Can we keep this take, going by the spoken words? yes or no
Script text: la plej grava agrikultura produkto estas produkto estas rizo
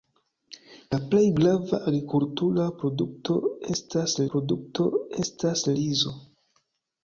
yes